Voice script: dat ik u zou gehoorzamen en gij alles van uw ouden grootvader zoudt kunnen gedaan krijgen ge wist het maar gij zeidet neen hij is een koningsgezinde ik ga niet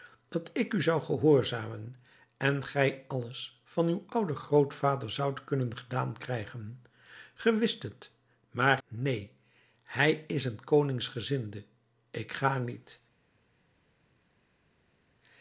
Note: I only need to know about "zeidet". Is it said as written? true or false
false